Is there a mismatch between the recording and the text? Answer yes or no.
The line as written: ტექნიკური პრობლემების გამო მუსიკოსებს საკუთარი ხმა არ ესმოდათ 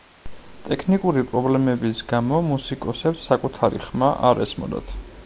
no